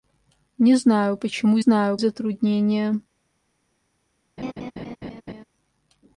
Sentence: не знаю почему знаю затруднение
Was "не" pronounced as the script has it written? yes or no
yes